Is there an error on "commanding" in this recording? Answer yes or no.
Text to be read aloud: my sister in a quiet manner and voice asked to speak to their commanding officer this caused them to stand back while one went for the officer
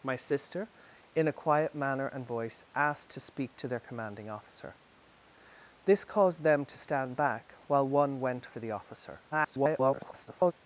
no